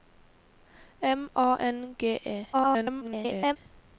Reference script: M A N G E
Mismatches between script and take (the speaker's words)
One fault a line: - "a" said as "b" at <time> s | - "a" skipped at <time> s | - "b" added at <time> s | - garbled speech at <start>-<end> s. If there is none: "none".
- garbled speech at 2.5-3.6 s